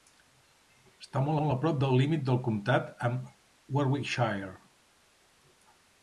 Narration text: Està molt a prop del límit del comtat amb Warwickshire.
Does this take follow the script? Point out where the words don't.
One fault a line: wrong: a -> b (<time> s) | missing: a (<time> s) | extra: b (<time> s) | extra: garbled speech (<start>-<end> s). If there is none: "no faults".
extra: molt (1.4 s)